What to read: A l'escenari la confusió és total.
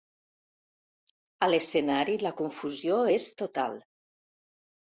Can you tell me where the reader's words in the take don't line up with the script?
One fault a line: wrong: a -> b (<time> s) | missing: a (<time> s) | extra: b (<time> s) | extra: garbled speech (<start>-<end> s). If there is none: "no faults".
no faults